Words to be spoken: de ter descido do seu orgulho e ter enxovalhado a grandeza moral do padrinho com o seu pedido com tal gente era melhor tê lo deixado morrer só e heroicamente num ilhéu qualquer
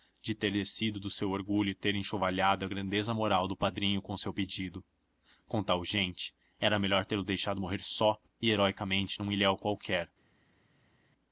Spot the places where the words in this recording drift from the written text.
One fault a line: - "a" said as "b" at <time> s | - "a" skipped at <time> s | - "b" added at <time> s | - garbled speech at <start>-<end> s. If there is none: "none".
none